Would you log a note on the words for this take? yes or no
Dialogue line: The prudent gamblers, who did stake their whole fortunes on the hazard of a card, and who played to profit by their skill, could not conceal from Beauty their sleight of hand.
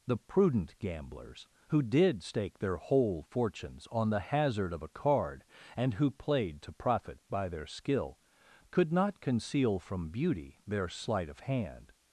no